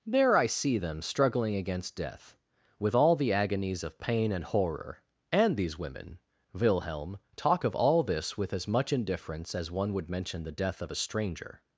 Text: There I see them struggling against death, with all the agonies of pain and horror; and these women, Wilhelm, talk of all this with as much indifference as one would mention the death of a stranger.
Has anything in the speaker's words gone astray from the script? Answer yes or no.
no